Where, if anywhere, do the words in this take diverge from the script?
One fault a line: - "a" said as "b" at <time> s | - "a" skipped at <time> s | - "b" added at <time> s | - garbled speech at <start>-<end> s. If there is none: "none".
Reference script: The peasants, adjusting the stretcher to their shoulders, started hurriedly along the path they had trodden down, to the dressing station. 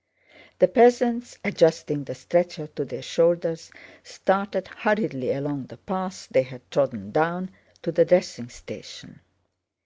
none